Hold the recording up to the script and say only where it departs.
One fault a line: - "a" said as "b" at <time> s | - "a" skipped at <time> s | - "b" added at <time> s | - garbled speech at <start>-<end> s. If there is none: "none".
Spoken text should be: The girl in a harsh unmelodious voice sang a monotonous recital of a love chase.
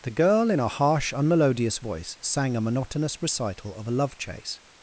none